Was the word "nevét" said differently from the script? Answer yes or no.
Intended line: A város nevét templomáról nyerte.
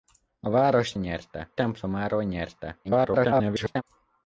yes